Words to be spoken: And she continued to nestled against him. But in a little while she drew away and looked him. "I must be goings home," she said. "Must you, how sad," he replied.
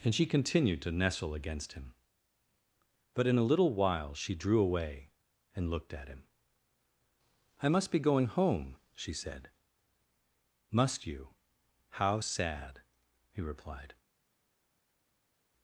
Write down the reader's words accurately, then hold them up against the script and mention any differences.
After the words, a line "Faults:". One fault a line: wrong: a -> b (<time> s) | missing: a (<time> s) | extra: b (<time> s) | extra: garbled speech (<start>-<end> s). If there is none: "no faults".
And she continued to nestle against him. But in a little while she drew away and looked at him. "I must be going home," she said. "Must you, how sad," he replied.
Faults:
wrong: nestled -> nestle (0.9 s)
extra: at (5.9 s)
wrong: goings -> going (8.0 s)